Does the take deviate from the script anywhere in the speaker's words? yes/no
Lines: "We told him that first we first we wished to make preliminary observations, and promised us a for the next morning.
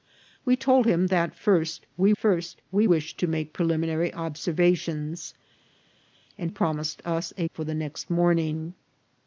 no